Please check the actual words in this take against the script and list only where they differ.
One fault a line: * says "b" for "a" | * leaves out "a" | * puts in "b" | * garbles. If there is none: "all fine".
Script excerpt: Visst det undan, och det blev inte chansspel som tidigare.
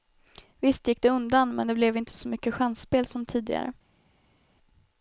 * puts in "gick"
* says "men" for "och"
* puts in "så mycket"